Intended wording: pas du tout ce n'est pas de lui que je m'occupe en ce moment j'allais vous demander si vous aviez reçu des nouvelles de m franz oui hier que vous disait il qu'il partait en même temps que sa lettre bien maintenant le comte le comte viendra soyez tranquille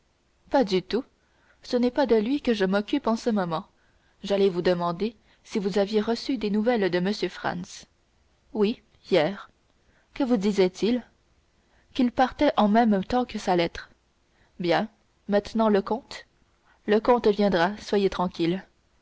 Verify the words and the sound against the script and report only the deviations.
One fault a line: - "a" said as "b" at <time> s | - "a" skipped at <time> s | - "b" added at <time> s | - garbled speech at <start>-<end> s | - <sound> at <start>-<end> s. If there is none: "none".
none